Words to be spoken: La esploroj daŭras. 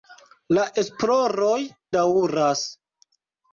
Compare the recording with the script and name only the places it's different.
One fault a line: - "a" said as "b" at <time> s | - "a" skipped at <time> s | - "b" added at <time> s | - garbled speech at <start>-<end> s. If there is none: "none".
none